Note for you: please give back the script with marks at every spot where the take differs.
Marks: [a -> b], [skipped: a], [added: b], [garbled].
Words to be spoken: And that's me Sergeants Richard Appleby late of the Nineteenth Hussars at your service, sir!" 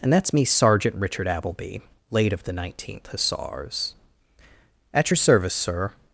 And that's me [Sergeants -> Sergeant] Richard Appleby late of the Nineteenth Hussars at your service, sir!"